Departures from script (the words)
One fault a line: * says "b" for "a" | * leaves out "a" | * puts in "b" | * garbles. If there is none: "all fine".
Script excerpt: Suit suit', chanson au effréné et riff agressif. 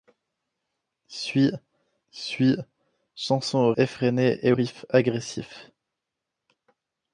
all fine